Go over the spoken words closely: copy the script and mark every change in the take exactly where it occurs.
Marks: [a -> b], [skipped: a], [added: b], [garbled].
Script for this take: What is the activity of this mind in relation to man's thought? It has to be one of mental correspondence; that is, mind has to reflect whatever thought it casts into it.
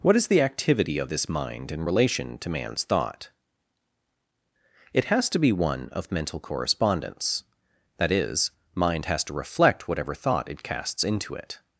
What is the activity of this mind in relation to man's thought? It has to be one of mental correspondence; that is, mind has to reflect whatever thought it casts into it.